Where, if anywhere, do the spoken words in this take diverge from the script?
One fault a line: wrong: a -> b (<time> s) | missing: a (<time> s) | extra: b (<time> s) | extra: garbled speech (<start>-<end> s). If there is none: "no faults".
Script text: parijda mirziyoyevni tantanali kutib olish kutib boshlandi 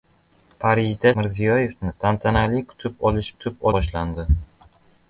no faults